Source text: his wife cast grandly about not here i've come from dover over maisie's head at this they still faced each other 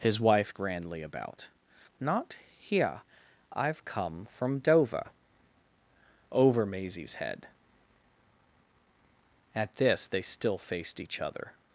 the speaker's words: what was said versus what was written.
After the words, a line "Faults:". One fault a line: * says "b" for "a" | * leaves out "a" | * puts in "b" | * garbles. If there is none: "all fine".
his wife grandly about not here i've come from dover over maisie's head at this they still faced each other
Faults:
* leaves out "cast"